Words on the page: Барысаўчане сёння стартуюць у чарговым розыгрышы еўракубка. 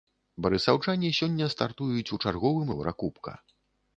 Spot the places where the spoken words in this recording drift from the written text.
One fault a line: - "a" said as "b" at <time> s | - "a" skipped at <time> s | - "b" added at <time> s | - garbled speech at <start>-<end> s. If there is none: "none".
- "розыгрышы" skipped at 2.7 s